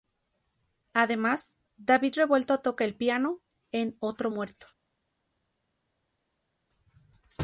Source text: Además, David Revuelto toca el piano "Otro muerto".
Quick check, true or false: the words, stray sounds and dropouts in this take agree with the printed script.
false